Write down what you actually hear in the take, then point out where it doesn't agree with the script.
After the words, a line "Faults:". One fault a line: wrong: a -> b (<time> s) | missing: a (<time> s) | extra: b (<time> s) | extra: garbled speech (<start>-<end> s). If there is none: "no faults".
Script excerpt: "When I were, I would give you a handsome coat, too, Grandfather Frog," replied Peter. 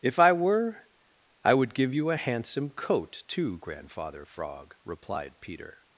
"If I were, I would give you a handsome coat, too, Grandfather Frog," replied Peter.
Faults:
wrong: When -> If (0.0 s)